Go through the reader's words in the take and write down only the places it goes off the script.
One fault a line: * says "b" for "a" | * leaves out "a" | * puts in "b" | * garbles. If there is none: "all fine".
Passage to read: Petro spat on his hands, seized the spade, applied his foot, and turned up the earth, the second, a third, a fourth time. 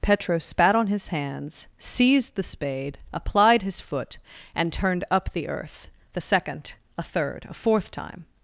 all fine